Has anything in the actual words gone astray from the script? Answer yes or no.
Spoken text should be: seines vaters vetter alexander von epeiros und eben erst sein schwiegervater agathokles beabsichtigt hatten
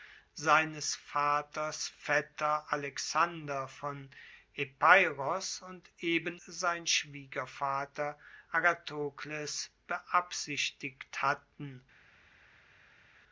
yes